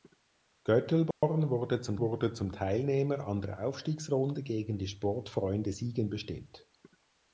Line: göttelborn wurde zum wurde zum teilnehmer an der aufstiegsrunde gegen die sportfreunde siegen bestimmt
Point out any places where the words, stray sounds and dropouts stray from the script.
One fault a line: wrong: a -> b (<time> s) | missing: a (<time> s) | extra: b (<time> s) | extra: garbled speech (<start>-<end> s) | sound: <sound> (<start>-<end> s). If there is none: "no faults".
sound: dropout (1.1-1.2 s)